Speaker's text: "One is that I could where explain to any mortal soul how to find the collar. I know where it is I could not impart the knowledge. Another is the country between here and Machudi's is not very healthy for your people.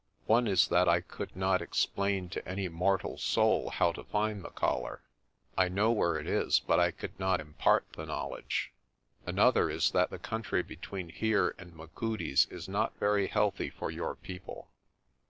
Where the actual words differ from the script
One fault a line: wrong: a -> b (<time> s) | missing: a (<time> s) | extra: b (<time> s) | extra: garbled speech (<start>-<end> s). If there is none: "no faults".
wrong: where -> not (1.4 s)
extra: but (6.6 s)
extra: that (9.9 s)